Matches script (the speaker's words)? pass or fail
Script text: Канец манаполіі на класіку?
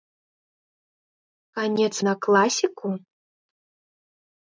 fail